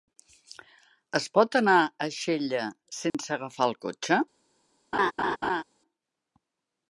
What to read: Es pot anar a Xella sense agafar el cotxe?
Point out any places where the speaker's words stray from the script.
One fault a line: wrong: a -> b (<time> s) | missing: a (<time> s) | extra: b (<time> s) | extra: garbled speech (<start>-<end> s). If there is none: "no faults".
no faults